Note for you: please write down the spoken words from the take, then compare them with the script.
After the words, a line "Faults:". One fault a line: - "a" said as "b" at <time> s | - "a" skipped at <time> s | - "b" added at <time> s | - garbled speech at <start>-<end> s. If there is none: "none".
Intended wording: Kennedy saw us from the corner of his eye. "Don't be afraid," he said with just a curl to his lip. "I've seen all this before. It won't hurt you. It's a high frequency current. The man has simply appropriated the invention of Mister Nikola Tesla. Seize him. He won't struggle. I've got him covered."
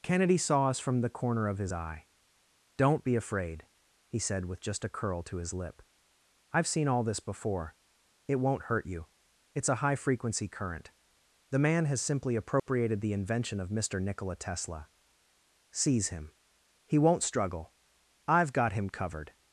Kennedy saw us from the corner of his eye. "Don't be afraid," he said with just a curl to his lip. "I've seen all this before. It won't hurt you. It's a high frequency current. The man has simply appropriated the invention of Mister Nikola Tesla. Seize him. He won't struggle. I've got him covered."
Faults:
none